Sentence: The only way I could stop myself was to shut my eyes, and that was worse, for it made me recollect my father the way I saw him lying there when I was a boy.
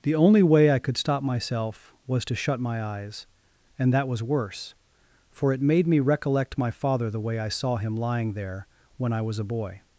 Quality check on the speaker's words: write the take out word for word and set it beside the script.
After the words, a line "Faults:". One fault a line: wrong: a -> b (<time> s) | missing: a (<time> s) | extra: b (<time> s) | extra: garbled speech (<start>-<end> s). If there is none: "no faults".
The only way I could stop myself was to shut my eyes, and that was worse, for it made me recollect my father the way I saw him lying there when I was a boy.
Faults:
no faults